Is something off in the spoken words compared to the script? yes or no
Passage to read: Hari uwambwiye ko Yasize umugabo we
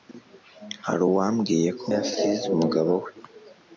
no